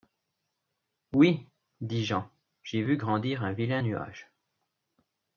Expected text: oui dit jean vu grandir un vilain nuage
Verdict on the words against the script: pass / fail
fail